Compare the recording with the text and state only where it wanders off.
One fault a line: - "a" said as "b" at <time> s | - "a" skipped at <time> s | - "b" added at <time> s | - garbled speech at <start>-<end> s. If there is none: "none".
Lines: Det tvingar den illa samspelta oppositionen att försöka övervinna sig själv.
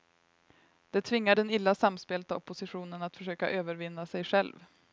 none